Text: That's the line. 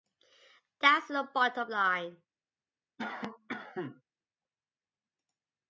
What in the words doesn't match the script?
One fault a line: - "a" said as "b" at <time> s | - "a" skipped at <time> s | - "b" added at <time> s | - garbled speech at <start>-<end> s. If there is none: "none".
- "bottom" added at 1.3 s